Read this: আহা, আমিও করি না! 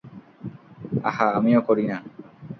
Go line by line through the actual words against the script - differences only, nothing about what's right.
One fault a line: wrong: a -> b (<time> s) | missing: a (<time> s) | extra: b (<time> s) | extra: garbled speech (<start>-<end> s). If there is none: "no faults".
no faults